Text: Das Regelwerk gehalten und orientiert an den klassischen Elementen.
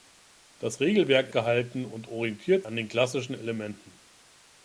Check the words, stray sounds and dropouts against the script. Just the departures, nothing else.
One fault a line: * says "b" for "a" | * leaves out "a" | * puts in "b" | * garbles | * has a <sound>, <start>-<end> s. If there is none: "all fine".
all fine